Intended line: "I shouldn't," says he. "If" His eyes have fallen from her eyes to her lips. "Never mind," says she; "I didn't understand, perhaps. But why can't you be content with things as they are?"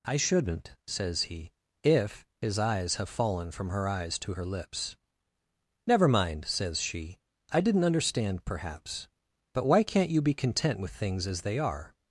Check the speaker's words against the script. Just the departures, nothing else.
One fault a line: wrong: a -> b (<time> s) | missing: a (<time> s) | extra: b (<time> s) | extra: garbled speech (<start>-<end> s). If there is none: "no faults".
no faults